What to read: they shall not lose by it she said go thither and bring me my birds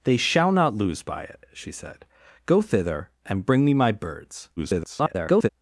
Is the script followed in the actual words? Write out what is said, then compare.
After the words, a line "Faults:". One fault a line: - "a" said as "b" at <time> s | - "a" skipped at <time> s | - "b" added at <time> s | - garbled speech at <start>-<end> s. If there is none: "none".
they shall not lose by it she said go thither and bring me my birds [garbled]
Faults:
- garbled speech at 4.6-5.5 s